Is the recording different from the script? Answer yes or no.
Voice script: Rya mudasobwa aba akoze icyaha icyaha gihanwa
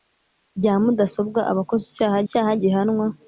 no